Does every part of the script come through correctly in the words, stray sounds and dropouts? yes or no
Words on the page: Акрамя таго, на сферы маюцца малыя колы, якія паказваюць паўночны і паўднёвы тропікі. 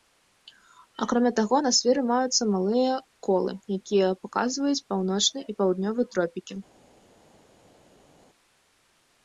yes